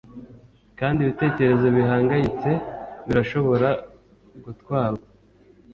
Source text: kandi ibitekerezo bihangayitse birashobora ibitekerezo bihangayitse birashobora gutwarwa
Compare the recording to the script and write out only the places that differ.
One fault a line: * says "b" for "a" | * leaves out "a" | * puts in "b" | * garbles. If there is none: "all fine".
* leaves out "ibitekerezo bihangayitse birashobora"